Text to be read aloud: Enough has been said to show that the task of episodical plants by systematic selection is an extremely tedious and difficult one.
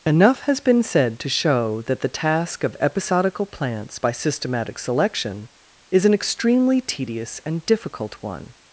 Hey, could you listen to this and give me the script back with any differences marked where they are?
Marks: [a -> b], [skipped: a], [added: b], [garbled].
Enough has been said to show that the task of episodical plants by systematic selection is an extremely tedious and difficult one.